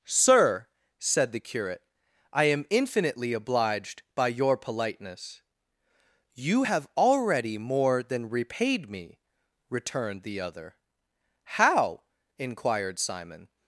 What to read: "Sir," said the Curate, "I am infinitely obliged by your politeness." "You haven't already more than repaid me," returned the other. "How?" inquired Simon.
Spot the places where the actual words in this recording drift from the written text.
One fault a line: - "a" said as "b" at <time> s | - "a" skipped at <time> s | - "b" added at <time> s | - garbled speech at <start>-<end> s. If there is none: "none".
- "haven't" said as "have" at 6.6 s